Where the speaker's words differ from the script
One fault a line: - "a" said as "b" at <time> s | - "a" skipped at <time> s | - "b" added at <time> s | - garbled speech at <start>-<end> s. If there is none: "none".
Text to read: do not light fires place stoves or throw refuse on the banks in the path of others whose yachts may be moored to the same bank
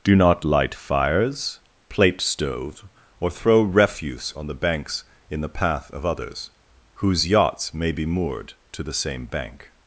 - "place" said as "plate" at 1.9 s